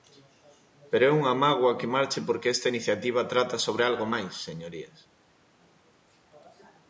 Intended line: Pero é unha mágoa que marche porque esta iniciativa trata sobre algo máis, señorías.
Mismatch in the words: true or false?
false